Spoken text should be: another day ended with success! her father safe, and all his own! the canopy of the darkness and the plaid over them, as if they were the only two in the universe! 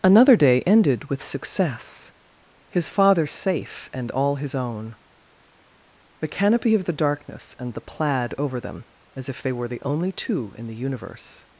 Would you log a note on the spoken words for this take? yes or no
yes